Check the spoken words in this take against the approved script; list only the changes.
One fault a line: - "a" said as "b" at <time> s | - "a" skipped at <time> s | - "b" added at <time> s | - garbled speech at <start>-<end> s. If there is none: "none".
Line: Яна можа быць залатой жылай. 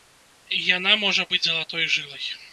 none